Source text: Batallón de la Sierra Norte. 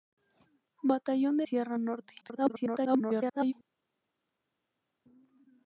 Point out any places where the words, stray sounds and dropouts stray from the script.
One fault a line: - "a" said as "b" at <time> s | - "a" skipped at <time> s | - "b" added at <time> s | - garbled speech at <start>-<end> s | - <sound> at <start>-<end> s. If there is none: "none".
- "la" skipped at 1.5 s
- garbled speech at 2.2-3.5 s